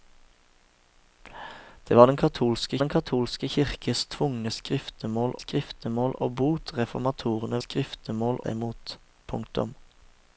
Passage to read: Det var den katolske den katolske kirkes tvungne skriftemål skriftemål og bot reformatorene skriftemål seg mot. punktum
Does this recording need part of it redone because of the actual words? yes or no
no